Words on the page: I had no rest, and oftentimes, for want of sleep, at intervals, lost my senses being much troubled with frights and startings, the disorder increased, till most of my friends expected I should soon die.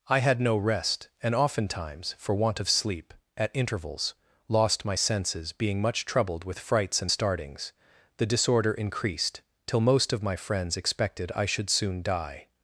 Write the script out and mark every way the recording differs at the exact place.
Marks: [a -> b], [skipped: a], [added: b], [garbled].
I had no rest, and oftentimes, for want of sleep, at intervals, lost my senses being much troubled with frights and startings, the disorder increased, till most of my friends expected I should soon die.